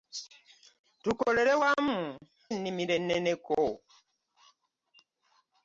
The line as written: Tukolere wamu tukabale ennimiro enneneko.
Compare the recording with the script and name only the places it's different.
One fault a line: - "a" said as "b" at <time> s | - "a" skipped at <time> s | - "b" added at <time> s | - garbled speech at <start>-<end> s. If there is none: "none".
- "tukabale" skipped at 2.0 s